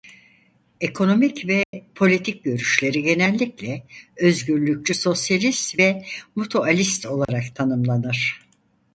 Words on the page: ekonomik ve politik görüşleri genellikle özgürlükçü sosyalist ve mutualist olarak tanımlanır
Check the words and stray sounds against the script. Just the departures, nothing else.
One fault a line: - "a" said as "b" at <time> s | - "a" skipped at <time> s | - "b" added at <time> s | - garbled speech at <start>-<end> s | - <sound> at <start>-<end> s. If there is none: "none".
- dropout at 1.6-1.7 s
- dropout at 7.2-7.3 s